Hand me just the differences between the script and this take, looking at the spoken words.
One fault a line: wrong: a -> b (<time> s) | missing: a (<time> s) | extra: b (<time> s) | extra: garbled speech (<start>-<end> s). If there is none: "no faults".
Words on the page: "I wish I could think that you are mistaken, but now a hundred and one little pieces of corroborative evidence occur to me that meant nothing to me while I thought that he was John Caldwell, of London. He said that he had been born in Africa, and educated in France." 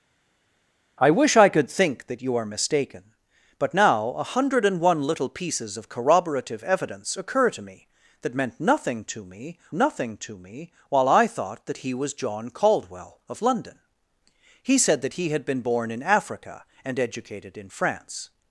extra: nothing to me (9.7 s)